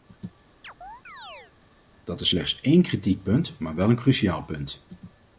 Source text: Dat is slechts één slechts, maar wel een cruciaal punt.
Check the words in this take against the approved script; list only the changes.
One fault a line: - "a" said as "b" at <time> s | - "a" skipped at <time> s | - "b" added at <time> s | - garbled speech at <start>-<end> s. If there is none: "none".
- "slechts" said as "kritiekpunt" at 2.8 s